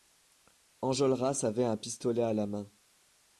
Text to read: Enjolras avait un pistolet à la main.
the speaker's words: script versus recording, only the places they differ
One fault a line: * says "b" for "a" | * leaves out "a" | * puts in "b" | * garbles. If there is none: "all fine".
all fine